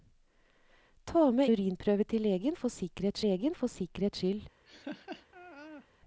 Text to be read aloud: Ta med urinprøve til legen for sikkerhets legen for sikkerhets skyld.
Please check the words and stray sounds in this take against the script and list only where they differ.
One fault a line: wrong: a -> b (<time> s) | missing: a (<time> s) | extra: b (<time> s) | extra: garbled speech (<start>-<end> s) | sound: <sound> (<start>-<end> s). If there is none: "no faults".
sound: laugh (4.6-5.9 s)